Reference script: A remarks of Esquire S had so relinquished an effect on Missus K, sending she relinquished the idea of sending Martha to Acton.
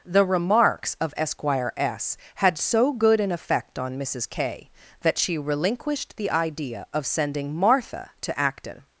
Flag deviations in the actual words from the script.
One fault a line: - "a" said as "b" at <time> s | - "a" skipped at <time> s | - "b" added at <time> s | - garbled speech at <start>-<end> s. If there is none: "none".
- "A" said as "The" at 0.1 s
- "relinquished" said as "good" at 2.9 s
- "sending" said as "that" at 5.0 s